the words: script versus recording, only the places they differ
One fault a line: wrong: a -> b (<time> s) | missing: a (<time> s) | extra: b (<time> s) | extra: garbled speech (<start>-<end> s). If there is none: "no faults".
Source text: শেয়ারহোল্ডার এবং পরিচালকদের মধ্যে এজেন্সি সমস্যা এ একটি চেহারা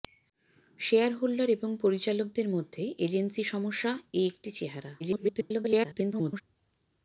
extra: garbled speech (5.0-6.4 s)